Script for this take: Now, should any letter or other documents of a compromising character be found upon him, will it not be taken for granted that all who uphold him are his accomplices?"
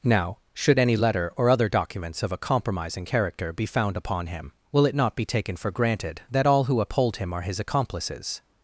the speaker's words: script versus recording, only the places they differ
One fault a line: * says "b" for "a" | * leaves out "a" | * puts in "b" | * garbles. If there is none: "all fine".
all fine